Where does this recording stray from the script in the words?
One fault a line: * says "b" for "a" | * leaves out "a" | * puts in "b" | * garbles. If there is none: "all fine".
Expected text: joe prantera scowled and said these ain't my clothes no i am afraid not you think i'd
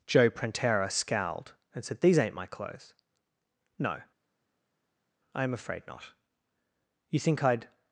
all fine